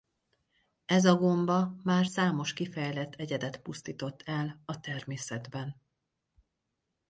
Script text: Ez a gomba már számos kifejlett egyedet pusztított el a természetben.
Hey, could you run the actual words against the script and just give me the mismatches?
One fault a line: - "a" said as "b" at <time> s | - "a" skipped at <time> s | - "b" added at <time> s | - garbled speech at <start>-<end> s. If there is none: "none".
none